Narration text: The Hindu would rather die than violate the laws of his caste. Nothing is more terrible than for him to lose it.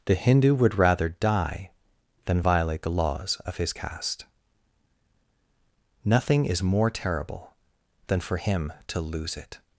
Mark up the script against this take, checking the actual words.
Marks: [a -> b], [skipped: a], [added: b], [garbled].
The Hindu would rather die than violate the laws of his caste. Nothing is more terrible than for him to lose it.